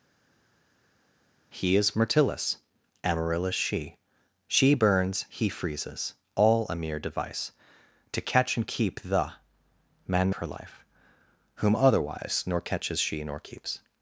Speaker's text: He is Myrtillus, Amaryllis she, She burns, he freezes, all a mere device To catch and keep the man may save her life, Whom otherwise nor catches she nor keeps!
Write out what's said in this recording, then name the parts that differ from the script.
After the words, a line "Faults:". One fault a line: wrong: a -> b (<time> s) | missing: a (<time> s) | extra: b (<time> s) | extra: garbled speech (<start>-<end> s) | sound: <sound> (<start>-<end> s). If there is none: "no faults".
He is Myrtillus, Amaryllis she, She burns, he freezes, all a mere device To catch and keep the man her life, Whom otherwise nor catches she nor keeps!
Faults:
missing: may save (10.3 s)